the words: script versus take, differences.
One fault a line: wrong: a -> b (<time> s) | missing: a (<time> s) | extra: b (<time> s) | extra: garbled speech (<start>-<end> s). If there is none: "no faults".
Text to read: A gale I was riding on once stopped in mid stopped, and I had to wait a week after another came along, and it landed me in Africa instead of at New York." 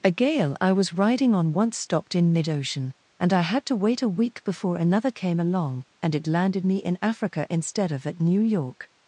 wrong: stopped -> ocean (2.5 s)
wrong: after -> before (4.4 s)